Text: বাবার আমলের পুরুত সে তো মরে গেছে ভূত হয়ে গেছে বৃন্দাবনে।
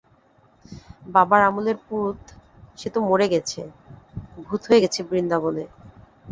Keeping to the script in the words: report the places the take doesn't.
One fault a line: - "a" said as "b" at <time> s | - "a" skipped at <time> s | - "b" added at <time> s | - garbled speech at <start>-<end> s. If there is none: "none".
none